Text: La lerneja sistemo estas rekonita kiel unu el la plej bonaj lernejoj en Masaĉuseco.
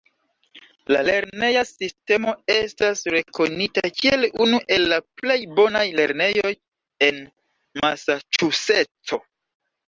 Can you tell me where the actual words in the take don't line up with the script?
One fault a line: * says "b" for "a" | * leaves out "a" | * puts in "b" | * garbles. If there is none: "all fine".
all fine